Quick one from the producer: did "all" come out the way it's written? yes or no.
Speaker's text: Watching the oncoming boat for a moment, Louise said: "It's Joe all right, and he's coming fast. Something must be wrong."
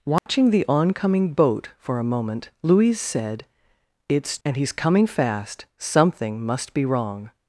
no